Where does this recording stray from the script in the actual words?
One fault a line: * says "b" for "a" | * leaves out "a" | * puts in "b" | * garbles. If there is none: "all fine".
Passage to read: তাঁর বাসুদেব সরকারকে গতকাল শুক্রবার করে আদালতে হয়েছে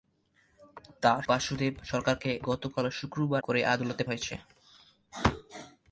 all fine